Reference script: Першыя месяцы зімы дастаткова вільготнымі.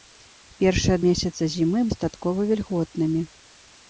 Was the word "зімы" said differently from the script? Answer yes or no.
no